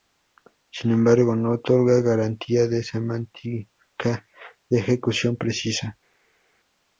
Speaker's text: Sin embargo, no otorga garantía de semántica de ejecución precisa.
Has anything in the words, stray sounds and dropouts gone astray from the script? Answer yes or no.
no